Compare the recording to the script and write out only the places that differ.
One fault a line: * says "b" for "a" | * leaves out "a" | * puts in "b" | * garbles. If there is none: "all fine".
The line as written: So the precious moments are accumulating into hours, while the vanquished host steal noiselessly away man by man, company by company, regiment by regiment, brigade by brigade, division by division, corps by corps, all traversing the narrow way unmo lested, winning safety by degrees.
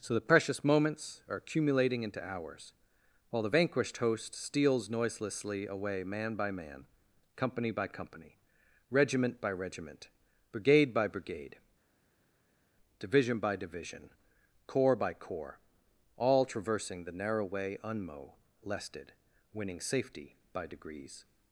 * says "steals" for "steal"